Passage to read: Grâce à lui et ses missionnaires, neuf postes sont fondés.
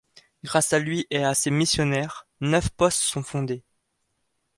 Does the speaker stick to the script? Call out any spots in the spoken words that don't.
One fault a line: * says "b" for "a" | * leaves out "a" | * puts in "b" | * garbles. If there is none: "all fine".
* puts in "à"